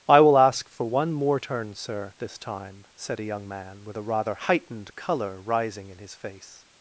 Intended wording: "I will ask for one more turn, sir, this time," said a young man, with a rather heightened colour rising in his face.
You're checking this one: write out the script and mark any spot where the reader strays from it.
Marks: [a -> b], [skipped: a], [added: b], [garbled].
"I will ask for one more turn, sir, this time," said a young man, with a rather heightened colour rising in his face.